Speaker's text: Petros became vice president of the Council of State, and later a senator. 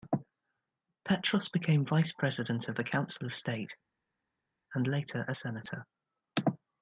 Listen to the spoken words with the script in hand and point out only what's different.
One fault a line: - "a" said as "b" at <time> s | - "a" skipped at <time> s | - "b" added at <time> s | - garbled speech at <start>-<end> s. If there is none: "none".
none